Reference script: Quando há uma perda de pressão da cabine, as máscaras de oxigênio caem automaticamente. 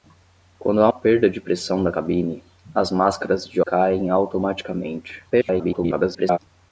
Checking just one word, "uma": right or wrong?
wrong